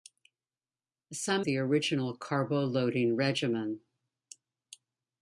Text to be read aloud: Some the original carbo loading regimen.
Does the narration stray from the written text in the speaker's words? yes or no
no